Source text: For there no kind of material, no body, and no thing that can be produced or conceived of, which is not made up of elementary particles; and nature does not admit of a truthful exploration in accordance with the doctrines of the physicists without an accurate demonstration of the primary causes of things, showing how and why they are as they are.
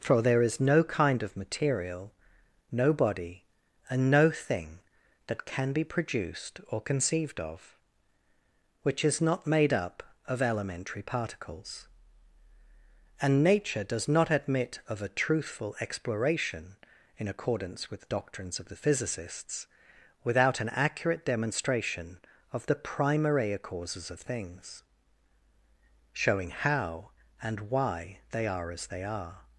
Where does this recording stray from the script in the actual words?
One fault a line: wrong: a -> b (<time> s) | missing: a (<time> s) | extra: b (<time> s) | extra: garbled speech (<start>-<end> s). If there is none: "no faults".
extra: is (0.4 s)